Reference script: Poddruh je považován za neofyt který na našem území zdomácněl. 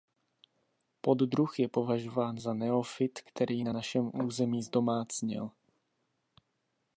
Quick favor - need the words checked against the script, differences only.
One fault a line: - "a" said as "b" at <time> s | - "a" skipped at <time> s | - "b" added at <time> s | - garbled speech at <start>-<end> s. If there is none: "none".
none